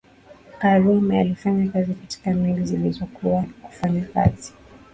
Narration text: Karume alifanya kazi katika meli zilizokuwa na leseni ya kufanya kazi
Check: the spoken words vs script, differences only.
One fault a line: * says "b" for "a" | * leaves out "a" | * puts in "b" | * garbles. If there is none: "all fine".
* leaves out "na leseni"